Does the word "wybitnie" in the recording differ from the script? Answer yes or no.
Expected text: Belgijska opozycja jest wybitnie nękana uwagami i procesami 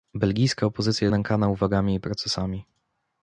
yes